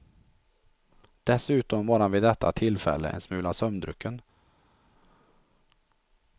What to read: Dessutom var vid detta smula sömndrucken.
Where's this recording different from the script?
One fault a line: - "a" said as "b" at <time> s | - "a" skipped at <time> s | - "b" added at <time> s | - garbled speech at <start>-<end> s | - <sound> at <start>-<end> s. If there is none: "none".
- "han" added at 2.0 s
- "tillfälle en" added at 2.5 s